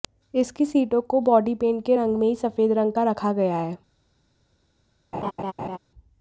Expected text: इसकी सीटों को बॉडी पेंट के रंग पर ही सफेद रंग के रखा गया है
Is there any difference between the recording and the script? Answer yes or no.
yes